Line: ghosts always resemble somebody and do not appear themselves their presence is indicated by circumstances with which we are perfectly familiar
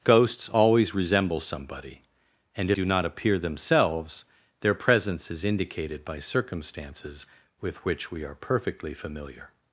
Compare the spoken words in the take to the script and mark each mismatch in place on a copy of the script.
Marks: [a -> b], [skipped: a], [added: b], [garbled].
ghosts always resemble somebody and do not appear themselves their presence is indicated by circumstances with which we are perfectly familiar